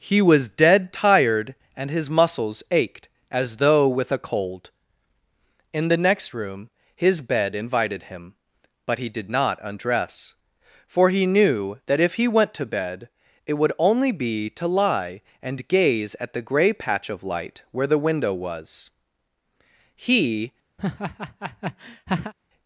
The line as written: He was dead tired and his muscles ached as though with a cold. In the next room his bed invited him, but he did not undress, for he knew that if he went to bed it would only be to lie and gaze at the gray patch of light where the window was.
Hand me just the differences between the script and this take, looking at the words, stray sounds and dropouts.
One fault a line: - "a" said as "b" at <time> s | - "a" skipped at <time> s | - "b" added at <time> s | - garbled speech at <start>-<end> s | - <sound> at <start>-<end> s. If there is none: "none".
- "He" added at 19.9 s
- laugh at 20.8-22.3 s